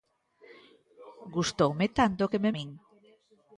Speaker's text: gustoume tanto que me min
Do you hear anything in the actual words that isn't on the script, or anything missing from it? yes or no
no